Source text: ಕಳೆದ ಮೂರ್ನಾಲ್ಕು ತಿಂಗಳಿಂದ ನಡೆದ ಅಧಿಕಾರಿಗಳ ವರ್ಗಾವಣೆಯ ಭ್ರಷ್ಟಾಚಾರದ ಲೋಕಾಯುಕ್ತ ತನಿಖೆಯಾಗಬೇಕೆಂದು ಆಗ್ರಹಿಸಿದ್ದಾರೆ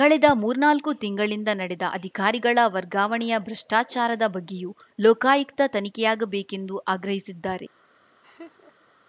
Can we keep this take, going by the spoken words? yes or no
no